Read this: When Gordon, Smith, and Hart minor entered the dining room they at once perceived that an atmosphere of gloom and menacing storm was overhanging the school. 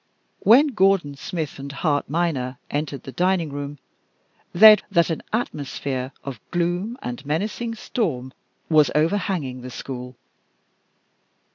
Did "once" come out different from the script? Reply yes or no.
yes